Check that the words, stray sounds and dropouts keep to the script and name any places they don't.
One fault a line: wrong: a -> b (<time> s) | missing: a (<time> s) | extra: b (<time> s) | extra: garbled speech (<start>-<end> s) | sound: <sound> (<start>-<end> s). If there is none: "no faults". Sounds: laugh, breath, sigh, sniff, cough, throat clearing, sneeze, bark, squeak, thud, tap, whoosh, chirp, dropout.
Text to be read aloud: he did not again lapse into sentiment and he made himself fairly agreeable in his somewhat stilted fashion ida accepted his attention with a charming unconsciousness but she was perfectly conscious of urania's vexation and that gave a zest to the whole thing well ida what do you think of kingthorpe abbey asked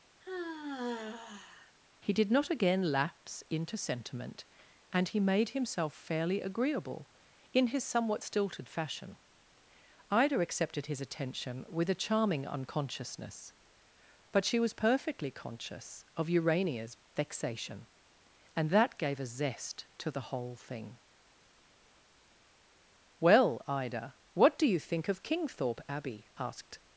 sound: sigh (0.2-1.8 s)